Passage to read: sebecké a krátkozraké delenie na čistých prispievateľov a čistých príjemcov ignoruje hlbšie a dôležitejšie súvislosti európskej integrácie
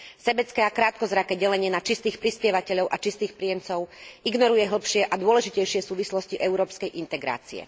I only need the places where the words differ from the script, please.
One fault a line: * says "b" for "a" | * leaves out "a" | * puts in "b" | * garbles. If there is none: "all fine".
all fine